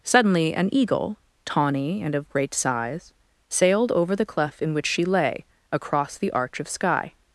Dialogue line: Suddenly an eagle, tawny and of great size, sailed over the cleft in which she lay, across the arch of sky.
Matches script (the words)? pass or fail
pass